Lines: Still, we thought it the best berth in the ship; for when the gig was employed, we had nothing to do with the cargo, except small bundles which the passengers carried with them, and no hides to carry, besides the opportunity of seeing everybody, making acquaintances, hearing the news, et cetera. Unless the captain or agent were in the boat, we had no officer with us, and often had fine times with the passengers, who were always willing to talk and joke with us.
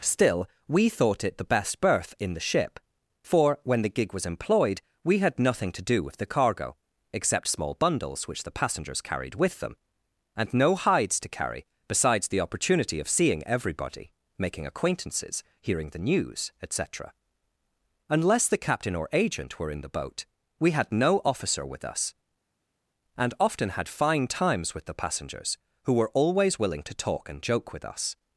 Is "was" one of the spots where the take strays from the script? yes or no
no